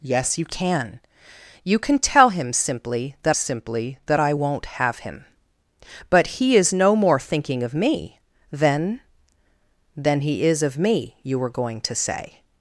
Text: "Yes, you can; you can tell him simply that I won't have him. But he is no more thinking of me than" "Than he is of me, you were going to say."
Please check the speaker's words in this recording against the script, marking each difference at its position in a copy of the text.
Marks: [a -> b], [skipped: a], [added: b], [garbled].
"Yes, you can; you can tell him simply that [added: simply that] I won't have him. But he is no more thinking of me than" "Than he is of me, you were going to say."